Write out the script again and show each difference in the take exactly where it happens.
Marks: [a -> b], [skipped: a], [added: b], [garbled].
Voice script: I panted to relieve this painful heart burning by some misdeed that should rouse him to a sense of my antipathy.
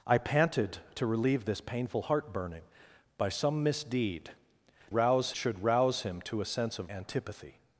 I panted to relieve this painful heart burning by some misdeed [that -> rouse] should rouse him to a sense of [skipped: my] antipathy.